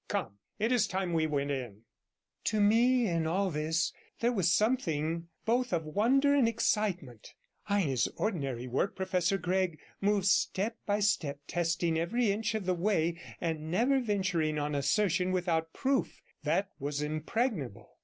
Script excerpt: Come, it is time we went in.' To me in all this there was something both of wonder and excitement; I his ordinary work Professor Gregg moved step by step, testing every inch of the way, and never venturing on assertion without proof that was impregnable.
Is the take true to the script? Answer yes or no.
yes